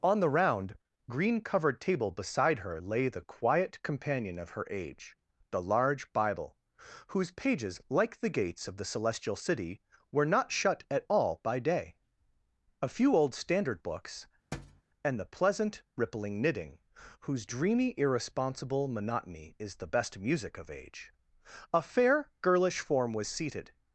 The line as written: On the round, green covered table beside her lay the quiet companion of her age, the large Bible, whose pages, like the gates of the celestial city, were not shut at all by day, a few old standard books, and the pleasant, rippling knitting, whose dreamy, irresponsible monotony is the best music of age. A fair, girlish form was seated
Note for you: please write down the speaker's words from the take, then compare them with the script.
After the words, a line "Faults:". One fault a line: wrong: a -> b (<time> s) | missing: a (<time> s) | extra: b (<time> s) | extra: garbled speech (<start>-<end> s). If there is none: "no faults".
On the round, green covered table beside her lay the quiet companion of her age, the large Bible, whose pages, like the gates of the celestial city, were not shut at all by day, a few old standard books, and the pleasant, rippling knitting, whose dreamy, irresponsible monotony is the best music of age. A fair, girlish form was seated
Faults:
no faults